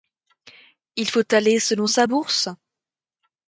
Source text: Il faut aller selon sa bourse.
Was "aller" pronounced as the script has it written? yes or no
yes